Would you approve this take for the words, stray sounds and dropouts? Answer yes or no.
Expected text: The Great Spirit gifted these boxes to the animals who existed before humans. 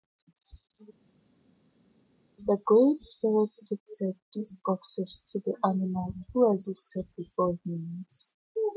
yes